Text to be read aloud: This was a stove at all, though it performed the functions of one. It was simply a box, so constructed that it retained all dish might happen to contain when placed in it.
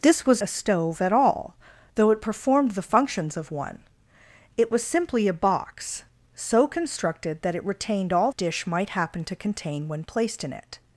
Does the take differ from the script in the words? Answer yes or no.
no